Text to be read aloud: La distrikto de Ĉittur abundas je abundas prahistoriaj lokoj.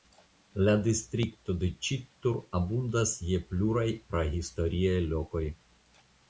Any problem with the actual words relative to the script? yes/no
yes